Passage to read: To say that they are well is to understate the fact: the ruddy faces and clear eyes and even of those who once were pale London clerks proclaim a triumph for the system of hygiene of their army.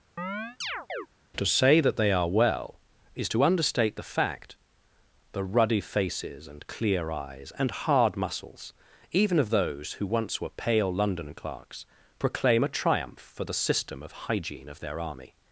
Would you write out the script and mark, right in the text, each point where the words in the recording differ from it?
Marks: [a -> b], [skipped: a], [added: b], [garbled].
To say that they are well is to understate the fact: the ruddy faces and clear eyes and [added: hard muscles] even of those who once were pale London clerks proclaim a triumph for the system of hygiene of their army.